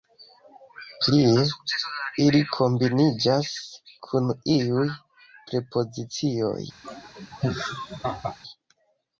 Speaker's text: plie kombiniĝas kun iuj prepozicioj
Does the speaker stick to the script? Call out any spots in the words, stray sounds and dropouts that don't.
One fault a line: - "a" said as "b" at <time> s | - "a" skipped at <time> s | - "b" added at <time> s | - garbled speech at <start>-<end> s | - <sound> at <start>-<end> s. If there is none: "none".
- "ili" added at 2.2 s
- laugh at 6.8-8.4 s